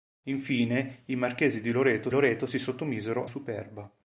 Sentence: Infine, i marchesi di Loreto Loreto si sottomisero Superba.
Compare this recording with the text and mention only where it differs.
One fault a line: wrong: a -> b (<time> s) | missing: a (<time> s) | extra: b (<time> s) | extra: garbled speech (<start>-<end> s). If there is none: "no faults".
no faults